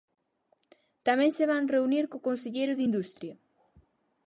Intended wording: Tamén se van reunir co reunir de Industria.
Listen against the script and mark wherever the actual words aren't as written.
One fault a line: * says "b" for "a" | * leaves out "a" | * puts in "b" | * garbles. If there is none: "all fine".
* says "conselleiro" for "reunir"